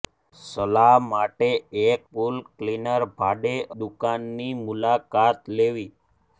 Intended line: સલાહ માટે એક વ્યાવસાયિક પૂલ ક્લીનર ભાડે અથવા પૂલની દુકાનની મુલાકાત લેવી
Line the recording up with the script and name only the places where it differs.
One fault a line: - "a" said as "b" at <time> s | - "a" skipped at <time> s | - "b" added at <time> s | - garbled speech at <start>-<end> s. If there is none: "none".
- "વ્યાવસાયિક" skipped at 2.0 s
- "અથવા પૂલની" skipped at 3.5 s